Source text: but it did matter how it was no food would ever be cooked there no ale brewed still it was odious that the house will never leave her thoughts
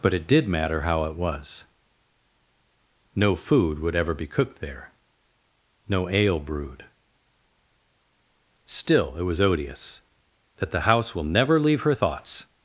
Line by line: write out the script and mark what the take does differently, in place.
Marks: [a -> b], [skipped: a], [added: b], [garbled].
but it did matter how it was no food would ever be cooked there no ale brewed still it was odious that the house will never leave her thoughts